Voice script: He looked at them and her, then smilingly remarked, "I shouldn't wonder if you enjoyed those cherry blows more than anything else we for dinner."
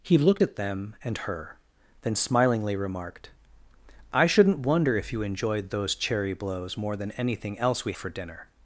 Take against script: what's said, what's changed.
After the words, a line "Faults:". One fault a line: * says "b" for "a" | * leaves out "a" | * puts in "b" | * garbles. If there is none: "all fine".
He looked at them and her, then smilingly remarked, "I shouldn't wonder if you enjoyed those cherry blows more than anything else we for dinner."
Faults:
all fine